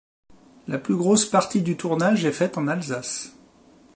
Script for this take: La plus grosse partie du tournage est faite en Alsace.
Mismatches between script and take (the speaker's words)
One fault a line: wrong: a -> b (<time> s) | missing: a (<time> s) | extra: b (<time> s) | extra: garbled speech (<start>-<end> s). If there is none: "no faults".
no faults